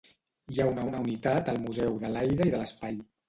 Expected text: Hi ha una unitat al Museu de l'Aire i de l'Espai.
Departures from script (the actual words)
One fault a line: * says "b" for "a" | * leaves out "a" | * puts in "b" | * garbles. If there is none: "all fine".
* puts in "una"